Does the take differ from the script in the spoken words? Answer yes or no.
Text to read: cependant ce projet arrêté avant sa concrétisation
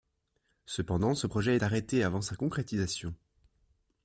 no